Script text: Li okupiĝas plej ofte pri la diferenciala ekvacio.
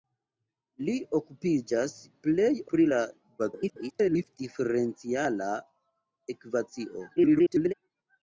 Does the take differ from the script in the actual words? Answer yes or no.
yes